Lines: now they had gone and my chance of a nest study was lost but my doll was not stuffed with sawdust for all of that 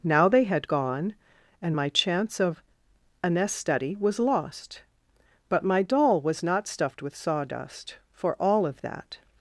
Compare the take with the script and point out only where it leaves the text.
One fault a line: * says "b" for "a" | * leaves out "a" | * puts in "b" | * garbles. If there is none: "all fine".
all fine